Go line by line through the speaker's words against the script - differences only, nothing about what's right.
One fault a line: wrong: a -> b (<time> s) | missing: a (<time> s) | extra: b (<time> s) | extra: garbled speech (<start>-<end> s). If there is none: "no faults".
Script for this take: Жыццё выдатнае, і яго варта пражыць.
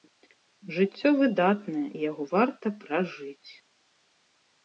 no faults